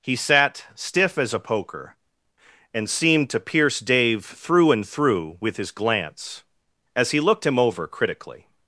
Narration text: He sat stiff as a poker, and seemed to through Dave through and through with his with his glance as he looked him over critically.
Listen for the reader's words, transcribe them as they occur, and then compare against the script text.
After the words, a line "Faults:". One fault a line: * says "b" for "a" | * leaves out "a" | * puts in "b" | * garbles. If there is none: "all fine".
He sat stiff as a poker, and seemed to pierce Dave through and through with his glance as he looked him over critically.
Faults:
* says "pierce" for "through"
* leaves out "with his"